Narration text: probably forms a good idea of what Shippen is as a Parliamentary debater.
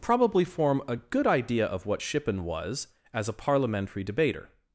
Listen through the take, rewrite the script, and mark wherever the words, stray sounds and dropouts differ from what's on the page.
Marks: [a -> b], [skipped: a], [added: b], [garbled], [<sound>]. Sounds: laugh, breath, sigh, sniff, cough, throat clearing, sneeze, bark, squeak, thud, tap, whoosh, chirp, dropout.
probably [forms -> form] a good idea of what Shippen [is -> was] as a Parliamentary debater.